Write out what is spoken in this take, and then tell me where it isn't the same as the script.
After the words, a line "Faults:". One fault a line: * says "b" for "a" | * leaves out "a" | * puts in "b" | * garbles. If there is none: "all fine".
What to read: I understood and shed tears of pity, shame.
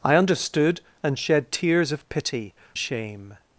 I understood and shed tears of pity, shame.
Faults:
all fine